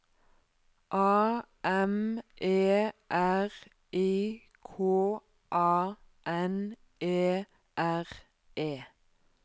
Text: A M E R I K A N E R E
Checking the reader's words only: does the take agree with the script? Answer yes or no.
yes